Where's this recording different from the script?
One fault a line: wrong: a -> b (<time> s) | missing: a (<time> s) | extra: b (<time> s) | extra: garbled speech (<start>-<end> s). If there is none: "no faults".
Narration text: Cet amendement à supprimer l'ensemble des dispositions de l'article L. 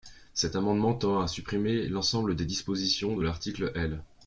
extra: tend (0.9 s)